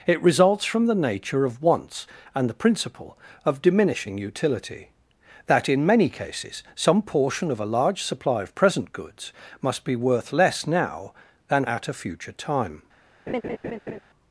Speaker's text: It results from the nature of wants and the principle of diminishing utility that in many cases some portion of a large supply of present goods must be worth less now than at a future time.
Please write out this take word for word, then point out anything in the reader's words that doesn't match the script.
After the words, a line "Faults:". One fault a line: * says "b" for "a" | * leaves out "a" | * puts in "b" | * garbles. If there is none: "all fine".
It results from the nature of wants and the principle of diminishing utility that in many cases some portion of a large supply of present goods must be worth less now than at a future time.
Faults:
all fine